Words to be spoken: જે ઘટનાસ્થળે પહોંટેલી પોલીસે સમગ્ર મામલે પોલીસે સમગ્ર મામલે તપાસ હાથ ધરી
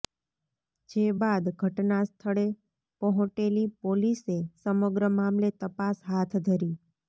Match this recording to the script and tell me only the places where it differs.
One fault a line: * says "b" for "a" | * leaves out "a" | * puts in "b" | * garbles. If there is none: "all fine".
* puts in "બાદ"
* leaves out "પોલીસે સમગ્ર મામલે"